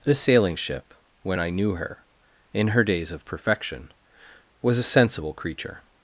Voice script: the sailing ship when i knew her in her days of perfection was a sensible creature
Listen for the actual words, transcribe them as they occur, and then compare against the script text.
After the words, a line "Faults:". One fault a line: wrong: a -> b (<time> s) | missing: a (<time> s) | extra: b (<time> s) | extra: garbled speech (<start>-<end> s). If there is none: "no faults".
the sailing ship when i knew her in her days of perfection was a sensible creature
Faults:
no faults